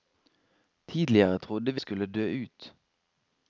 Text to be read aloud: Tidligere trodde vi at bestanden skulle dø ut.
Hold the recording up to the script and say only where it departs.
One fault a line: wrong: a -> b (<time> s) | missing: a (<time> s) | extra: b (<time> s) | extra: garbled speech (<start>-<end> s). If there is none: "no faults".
missing: at bestanden (1.8 s)